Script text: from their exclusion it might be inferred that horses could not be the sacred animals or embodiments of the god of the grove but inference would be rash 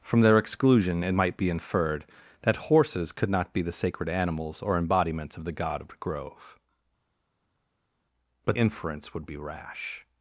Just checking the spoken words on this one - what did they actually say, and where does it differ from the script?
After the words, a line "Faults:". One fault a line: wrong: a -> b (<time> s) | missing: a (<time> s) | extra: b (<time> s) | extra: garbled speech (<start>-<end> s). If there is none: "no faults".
from their exclusion it might be inferred that horses could not be the sacred animals or embodiments of the god of the grove but inference would be rash
Faults:
no faults